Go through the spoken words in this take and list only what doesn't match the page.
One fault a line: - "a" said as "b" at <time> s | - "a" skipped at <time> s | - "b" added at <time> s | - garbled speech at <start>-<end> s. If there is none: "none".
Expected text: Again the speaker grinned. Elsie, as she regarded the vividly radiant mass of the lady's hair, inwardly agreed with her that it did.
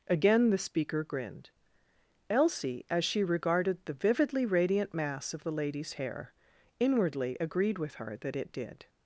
none